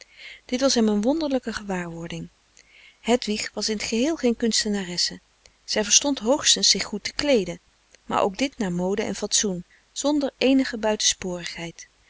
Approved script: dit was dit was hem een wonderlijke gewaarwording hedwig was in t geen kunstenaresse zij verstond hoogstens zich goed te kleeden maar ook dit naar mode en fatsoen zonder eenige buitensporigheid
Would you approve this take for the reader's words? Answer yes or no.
no